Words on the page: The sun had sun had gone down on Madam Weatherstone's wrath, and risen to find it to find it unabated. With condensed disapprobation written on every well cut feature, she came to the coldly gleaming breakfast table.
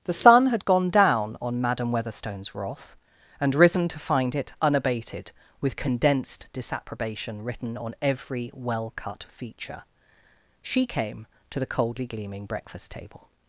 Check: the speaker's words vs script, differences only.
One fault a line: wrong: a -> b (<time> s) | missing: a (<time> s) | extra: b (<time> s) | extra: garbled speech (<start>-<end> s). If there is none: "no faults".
missing: sun had (0.6 s)
missing: to find it (4.5 s)